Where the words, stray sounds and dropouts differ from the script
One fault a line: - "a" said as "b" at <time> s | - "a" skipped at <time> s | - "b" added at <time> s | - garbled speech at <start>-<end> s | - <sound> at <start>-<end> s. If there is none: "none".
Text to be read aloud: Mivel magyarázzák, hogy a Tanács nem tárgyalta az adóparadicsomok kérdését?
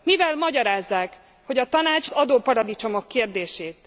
- "nem tárgyalta az" skipped at 2.1 s